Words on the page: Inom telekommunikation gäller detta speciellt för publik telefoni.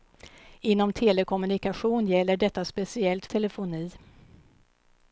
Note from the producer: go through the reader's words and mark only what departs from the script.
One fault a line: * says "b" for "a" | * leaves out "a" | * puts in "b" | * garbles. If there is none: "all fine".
* leaves out "för publik"